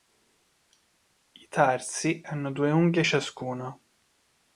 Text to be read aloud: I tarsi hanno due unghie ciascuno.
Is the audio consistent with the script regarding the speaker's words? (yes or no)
yes